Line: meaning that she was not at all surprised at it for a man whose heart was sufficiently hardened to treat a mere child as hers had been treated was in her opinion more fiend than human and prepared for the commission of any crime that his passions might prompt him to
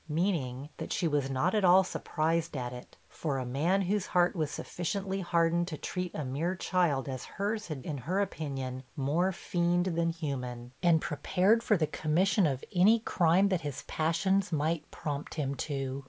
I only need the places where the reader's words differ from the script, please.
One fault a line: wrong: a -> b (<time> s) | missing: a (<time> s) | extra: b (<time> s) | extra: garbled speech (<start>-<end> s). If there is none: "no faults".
missing: been treated was (7.8 s)